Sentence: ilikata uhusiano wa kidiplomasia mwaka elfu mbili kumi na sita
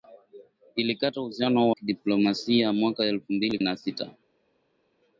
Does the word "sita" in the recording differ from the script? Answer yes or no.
no